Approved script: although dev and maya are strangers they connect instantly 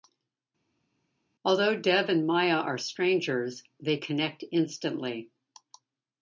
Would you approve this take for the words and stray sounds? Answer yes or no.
yes